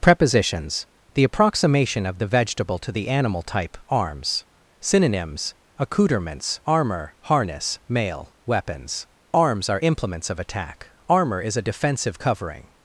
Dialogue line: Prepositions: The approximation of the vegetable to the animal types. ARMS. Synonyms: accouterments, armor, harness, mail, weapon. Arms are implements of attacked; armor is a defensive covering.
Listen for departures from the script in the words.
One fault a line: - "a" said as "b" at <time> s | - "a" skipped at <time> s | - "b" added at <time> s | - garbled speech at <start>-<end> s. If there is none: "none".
- "types" said as "type" at 3.4 s
- "weapon" said as "weapons" at 8.5 s
- "attacked" said as "attack" at 10.4 s